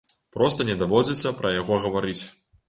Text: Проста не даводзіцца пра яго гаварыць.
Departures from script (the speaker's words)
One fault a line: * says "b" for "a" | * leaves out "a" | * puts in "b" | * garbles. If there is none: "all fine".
all fine